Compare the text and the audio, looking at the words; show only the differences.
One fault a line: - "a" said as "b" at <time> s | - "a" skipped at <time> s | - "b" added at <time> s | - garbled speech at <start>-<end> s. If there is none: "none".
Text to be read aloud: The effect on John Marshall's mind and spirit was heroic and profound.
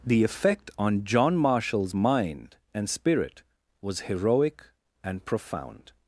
none